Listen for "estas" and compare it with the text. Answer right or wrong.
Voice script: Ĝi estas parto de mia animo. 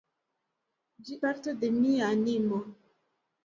wrong